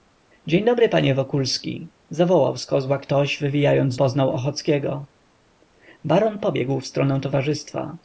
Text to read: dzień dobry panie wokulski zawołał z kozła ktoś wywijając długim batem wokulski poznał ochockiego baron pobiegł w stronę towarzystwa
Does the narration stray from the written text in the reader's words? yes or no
yes